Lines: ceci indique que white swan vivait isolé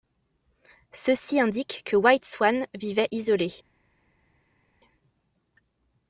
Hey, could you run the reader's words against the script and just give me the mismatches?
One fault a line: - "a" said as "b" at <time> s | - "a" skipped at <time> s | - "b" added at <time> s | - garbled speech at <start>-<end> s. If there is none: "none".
none